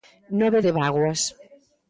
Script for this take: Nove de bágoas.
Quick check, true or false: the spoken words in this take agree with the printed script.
true